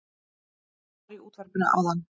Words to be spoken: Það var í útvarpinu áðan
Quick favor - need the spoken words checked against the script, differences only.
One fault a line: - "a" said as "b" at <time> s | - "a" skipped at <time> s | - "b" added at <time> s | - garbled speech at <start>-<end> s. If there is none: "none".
none